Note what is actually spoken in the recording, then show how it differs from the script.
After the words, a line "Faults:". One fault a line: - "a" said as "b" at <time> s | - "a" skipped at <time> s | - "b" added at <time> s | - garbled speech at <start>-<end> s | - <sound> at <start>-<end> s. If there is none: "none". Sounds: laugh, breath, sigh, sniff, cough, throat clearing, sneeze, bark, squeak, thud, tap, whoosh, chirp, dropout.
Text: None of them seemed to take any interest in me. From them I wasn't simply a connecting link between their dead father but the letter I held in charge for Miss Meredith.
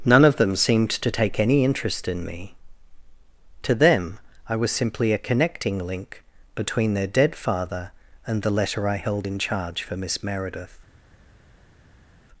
None of them seemed to take any interest in me. To them I was simply a connecting link between their dead father and the letter I held in charge for Miss Meredith.
Faults:
- "From" said as "To" at 3.6 s
- "wasn't" said as "was" at 4.6 s
- "but" said as "and" at 8.3 s